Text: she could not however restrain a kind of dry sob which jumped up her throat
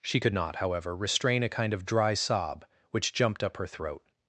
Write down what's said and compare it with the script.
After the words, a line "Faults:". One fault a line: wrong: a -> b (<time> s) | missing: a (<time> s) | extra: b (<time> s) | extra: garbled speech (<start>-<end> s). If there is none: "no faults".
she could not however restrain a kind of dry sob which jumped up her throat
Faults:
no faults